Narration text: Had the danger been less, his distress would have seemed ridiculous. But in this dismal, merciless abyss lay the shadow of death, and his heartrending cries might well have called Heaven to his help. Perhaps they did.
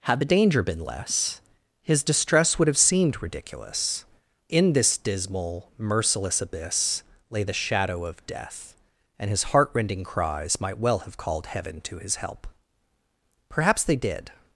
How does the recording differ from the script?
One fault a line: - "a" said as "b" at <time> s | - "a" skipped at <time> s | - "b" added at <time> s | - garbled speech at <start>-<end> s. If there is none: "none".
- "But" skipped at 4.0 s